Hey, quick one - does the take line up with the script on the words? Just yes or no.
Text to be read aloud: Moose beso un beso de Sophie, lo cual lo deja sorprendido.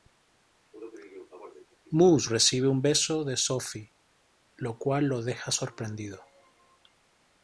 no